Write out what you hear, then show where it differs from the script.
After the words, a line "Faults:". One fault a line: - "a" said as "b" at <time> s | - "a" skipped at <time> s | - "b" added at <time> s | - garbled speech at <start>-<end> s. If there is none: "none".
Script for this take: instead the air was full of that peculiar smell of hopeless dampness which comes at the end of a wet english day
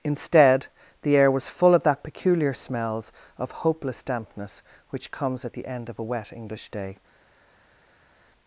instead the air was full of that peculiar smells of hopeless dampness which comes at the end of a wet english day
Faults:
- "smell" said as "smells" at 2.5 s